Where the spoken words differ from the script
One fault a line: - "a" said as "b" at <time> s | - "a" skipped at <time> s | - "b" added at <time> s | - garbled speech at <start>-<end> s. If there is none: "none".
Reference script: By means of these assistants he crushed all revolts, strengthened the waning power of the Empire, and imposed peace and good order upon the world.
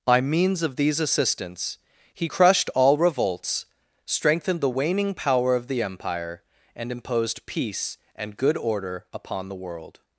none